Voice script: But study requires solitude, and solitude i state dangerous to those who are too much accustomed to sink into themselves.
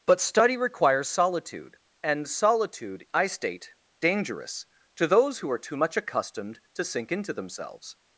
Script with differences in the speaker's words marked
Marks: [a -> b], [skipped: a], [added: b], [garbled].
But study requires solitude, and solitude i state dangerous to those who are too much accustomed to sink into themselves.